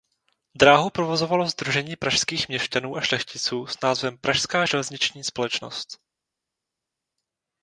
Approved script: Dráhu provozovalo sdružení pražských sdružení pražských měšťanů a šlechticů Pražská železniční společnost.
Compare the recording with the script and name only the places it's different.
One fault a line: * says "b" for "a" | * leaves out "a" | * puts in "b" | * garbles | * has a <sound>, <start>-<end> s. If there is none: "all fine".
* leaves out "sdružení pražských"
* puts in "s názvem"